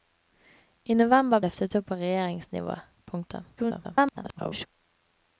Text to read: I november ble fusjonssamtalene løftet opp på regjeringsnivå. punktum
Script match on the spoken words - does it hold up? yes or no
no